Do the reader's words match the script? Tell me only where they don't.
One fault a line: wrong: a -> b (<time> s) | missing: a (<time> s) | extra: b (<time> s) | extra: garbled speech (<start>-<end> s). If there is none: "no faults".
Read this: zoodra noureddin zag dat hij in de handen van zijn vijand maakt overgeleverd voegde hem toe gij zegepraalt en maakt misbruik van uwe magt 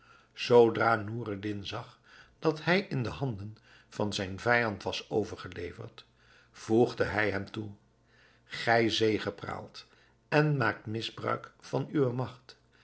wrong: maakt -> was (4.8 s)
extra: hij (7.0 s)